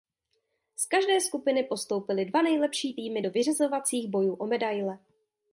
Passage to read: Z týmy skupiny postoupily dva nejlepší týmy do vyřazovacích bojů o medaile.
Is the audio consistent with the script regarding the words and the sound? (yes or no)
no